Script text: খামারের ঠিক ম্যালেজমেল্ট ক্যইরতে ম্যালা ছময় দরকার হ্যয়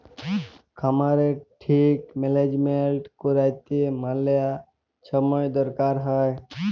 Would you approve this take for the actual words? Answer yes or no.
yes